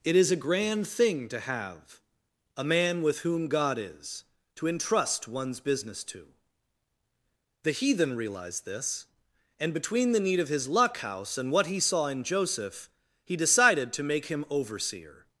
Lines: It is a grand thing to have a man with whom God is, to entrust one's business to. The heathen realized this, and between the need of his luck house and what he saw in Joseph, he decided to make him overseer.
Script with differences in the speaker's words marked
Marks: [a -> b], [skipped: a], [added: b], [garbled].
It is a grand thing to have a man with whom God is, to entrust one's business to. The heathen realized this, and between the need of his luck house and what he saw in Joseph, he decided to make him overseer.